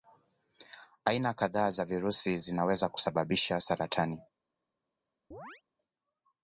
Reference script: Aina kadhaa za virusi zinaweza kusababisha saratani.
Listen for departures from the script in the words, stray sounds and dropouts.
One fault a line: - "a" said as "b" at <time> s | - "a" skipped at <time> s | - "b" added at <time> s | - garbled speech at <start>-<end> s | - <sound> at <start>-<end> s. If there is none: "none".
- chirp at 5.3-5.6 s